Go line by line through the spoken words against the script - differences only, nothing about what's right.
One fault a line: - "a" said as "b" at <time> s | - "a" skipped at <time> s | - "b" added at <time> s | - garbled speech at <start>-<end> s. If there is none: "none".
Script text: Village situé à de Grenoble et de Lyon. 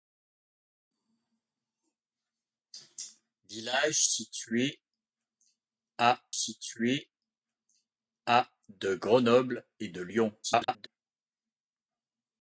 - "situé à" added at 6.3 s
- garbled speech at 10.4-10.9 s